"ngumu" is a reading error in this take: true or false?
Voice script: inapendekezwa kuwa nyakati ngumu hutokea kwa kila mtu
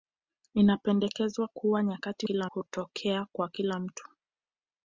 true